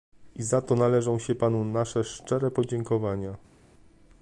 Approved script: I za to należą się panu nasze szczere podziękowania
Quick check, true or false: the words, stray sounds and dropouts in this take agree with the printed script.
true